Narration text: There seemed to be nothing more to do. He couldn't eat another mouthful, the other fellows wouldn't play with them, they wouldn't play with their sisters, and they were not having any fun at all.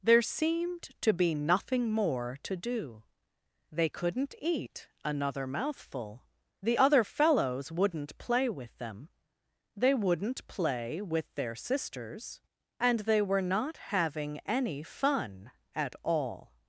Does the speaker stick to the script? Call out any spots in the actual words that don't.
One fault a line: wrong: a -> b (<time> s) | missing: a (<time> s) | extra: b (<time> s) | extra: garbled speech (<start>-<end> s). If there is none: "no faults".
wrong: He -> They (3.7 s)